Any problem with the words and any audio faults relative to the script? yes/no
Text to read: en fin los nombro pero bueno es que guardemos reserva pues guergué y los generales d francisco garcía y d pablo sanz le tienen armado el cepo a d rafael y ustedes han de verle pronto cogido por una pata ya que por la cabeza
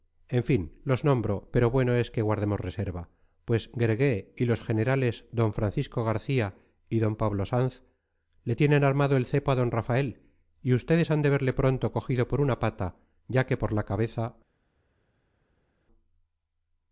no